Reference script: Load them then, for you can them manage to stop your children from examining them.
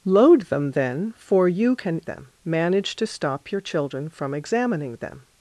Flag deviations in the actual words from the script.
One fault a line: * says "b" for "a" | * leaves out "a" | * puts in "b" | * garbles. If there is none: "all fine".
all fine